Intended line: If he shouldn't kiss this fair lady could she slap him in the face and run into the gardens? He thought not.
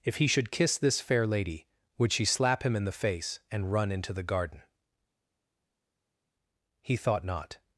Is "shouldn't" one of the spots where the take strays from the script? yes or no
yes